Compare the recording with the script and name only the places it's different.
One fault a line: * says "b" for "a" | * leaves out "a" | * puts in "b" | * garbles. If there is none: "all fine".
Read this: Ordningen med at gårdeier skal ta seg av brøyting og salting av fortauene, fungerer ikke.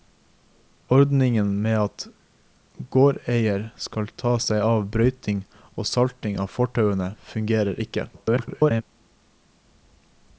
* garbles